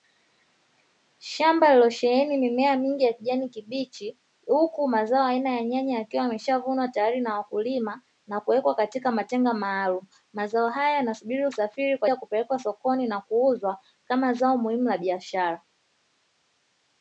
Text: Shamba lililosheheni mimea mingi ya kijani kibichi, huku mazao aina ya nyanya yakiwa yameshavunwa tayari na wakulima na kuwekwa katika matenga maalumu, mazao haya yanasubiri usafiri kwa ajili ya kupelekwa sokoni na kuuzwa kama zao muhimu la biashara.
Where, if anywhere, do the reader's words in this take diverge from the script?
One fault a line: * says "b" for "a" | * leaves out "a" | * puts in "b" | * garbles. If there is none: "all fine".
* leaves out "ajili"